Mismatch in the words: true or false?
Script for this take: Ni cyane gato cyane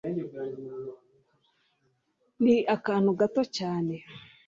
true